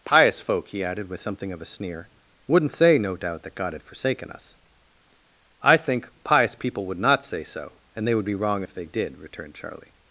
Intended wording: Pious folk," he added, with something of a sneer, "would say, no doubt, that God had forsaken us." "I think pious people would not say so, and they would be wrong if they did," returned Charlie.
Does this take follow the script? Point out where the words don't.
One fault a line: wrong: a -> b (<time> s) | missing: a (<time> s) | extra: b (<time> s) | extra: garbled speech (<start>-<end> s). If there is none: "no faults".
wrong: would -> wouldn't (2.5 s)